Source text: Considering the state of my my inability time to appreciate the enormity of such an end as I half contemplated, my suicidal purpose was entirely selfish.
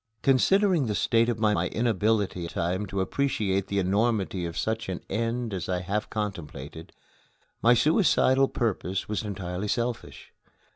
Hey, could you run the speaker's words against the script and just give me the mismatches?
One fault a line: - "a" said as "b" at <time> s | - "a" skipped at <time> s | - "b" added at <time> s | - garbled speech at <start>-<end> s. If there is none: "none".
none